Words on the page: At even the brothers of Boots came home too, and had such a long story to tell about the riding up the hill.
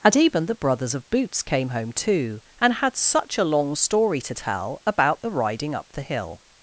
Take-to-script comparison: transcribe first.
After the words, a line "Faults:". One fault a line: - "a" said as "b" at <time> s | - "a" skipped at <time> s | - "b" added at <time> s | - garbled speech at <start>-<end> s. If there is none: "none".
And even the brothers of Boots came home too, and had such a long story to tell about the riding up the hill.
Faults:
- "At" said as "And" at 0.0 s